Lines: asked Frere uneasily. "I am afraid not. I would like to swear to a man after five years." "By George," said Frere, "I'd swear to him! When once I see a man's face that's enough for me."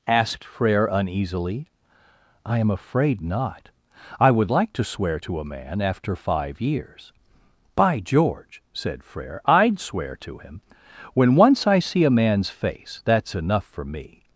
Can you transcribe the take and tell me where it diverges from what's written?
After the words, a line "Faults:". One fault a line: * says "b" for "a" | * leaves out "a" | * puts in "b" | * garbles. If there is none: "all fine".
asked Frere uneasily. "I am afraid not. I would like to swear to a man after five years." "By George," said Frere, "I'd swear to him! When once I see a man's face that's enough for me."
Faults:
all fine